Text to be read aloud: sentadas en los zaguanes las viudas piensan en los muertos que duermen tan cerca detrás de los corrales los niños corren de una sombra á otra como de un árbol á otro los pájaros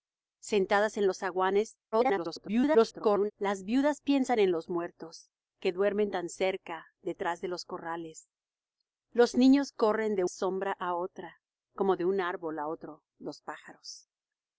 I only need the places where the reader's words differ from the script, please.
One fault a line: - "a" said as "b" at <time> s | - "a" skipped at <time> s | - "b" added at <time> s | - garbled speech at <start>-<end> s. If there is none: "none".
- garbled speech at 1.9-3.3 s
- "una" skipped at 10.2 s